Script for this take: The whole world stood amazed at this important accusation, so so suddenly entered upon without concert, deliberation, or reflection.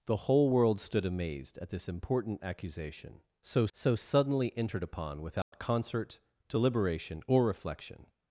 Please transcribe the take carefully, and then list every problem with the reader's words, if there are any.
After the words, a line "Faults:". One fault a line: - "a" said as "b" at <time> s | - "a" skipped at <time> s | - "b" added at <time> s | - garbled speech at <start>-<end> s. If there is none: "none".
The whole world stood amazed at this important accusation, so so suddenly entered upon without concert, deliberation, or reflection.
Faults:
none